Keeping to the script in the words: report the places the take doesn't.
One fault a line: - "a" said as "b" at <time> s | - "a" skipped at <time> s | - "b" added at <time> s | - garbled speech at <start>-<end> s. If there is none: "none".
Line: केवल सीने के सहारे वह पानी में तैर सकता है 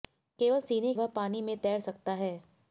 - "के सहारे" skipped at 0.9 s